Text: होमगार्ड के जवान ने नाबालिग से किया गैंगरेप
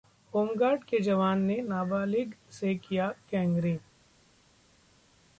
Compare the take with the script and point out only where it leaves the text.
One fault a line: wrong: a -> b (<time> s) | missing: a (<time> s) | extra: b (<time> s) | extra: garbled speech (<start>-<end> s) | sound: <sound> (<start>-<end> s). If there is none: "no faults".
no faults